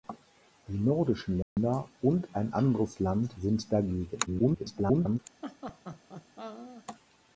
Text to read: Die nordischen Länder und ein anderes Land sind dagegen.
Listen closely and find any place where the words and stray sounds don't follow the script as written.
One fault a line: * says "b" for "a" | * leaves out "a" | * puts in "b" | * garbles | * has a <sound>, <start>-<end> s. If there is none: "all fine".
* has a dropout, 1.4-1.6 s
* garbles
* has a laugh, 5.4-6.8 s